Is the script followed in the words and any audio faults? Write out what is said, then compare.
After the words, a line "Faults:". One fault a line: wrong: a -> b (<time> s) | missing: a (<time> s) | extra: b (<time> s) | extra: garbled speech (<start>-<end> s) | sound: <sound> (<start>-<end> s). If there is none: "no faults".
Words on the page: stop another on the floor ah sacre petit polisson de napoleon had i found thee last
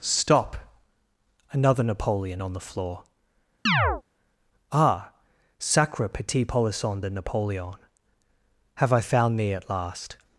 stop another napoleon on the floor ah sacre petit polisson de napoleon have i found thee at last
Faults:
extra: napoleon (1.8 s)
sound: chirp (3.7-4.0 s)
wrong: had -> have (8.7 s)
extra: at (9.5 s)